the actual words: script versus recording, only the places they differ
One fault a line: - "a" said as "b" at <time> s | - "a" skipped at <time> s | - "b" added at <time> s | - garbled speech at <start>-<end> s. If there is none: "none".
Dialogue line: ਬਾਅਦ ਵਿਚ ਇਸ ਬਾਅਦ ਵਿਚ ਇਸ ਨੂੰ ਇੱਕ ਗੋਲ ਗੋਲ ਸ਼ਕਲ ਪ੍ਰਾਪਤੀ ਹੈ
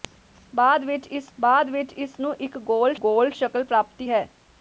none